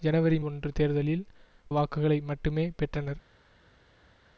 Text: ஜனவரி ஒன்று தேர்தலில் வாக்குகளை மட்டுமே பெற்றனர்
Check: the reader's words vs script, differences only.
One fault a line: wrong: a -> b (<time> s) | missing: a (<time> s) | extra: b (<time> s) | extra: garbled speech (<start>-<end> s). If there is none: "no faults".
no faults